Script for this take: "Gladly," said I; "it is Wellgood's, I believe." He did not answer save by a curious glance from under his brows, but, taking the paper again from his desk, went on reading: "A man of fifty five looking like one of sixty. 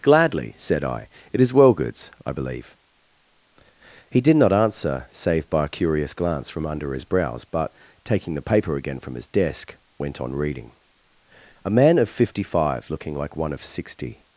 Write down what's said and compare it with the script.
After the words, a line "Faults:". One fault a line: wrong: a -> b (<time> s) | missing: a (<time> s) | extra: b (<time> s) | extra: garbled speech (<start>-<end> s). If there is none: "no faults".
"Gladly," said I; "it is Wellgood's, I believe." He did not answer save by a curious glance from under his brows, but, taking the paper again from his desk, went on reading: "A man of fifty five looking like one of sixty.
Faults:
no faults